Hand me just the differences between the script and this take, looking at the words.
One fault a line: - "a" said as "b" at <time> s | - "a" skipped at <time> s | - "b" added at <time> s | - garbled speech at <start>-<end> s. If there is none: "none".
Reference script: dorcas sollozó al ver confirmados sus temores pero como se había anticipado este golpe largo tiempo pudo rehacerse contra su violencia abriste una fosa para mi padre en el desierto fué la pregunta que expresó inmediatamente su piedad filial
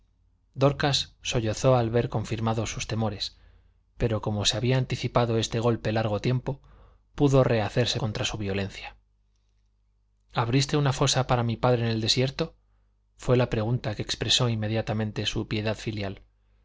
none